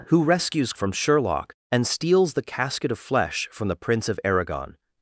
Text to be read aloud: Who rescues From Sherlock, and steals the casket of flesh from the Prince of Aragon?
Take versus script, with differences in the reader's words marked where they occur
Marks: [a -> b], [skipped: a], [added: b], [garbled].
Who rescues From Sherlock, and steals the casket of flesh from the Prince of Aragon?